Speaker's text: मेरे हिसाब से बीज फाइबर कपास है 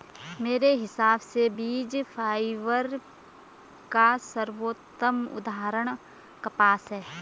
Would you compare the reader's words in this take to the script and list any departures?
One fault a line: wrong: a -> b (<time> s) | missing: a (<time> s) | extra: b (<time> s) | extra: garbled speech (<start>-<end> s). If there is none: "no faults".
extra: का सर्वोत्तम उदाहरण (3.9 s)